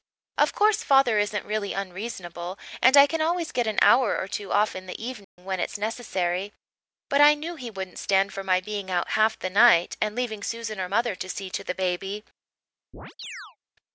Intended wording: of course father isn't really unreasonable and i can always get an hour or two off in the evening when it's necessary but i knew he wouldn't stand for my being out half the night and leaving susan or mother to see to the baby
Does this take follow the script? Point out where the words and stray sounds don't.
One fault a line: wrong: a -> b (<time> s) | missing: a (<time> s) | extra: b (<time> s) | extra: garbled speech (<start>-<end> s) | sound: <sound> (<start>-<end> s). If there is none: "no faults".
sound: dropout (5.2-5.4 s)
sound: chirp (12.9-13.6 s)